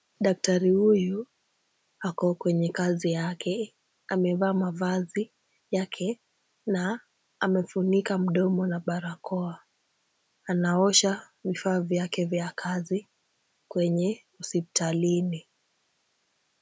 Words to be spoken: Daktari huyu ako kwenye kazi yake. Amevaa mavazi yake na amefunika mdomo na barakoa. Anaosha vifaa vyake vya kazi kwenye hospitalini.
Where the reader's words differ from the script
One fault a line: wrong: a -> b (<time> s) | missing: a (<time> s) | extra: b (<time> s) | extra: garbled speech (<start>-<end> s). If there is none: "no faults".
no faults